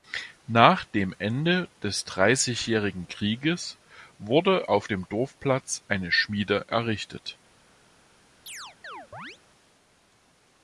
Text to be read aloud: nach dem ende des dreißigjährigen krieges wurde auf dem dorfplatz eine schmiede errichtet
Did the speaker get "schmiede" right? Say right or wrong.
right